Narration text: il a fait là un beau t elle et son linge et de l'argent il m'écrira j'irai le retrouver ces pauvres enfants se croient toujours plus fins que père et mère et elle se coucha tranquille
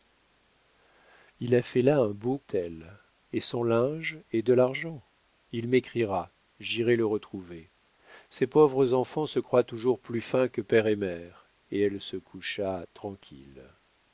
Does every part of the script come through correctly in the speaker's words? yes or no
yes